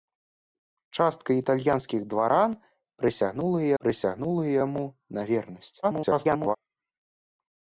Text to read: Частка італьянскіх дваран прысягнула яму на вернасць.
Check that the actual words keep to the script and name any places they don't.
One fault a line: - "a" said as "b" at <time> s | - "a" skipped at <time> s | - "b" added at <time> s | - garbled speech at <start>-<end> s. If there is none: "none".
- "прысягнула" added at 3.8 s
- garbled speech at 5.8-6.6 s